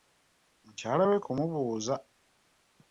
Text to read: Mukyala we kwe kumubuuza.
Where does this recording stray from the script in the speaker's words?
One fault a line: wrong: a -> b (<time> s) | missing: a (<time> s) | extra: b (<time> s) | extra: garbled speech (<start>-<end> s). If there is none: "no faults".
missing: kwe (1.2 s)